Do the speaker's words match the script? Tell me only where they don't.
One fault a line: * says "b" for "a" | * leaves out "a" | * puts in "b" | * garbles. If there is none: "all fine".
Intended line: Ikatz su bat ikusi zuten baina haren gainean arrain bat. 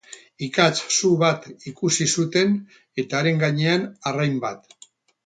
* says "eta" for "baina"